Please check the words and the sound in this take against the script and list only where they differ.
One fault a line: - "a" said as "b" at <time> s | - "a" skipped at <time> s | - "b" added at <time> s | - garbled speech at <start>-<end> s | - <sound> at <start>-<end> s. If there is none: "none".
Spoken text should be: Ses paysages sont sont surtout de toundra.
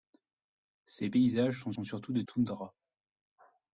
none